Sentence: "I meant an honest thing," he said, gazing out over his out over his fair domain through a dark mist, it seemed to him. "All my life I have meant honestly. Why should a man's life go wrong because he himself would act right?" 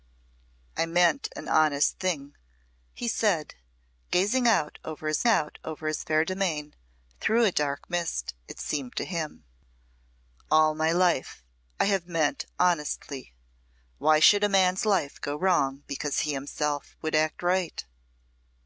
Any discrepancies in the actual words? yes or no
no